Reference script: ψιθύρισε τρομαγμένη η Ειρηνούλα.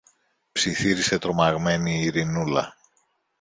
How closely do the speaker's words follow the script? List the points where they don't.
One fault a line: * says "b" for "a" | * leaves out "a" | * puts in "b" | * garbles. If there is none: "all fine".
all fine